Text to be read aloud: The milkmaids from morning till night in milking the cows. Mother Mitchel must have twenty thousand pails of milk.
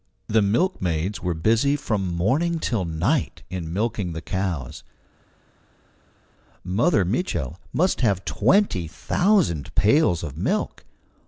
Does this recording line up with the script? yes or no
no